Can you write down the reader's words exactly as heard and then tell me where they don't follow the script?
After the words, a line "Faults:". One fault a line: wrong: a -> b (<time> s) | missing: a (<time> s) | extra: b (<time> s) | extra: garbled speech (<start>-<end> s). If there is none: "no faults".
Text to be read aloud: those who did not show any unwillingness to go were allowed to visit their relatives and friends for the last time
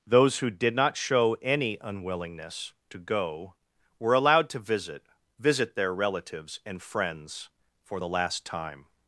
those who did not show any unwillingness to go were allowed to visit visit their relatives and friends for the last time
Faults:
extra: visit (5.4 s)